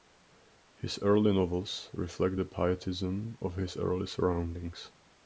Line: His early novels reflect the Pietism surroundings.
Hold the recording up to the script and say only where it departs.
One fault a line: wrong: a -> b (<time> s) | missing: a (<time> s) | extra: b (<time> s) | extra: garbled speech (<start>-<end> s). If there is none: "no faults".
extra: of his early (3.4 s)